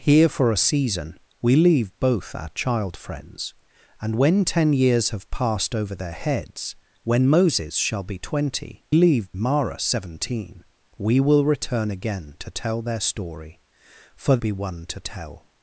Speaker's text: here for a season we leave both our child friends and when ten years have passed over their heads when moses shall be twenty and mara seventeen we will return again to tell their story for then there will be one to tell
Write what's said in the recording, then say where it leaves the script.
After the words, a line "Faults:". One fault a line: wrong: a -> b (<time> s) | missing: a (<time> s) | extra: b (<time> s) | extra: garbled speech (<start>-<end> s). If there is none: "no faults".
here for a season we leave both our child friends and when ten years have passed over their heads when moses shall be twenty leave mara seventeen we will return again to tell their story for be one to tell
Faults:
wrong: and -> leave (8.9 s)
missing: then there will (14.4 s)